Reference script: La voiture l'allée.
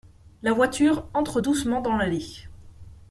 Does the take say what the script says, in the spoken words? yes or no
no